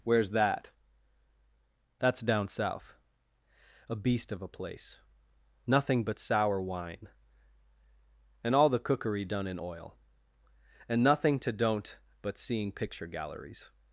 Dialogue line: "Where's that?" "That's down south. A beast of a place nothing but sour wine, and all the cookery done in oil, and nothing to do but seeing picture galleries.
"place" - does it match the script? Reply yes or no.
yes